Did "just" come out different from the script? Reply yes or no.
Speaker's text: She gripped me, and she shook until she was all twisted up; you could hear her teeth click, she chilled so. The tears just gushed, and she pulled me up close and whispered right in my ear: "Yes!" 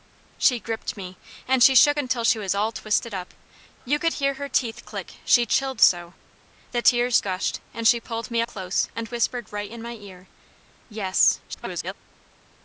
yes